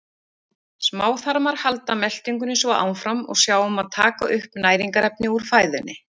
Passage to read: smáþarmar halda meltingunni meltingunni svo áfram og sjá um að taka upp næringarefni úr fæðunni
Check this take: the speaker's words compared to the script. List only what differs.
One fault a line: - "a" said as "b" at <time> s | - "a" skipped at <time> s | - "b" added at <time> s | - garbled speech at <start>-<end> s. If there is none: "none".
- "meltingunni" skipped at 2.5 s